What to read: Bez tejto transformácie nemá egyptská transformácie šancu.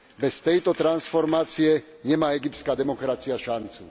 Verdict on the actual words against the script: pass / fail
fail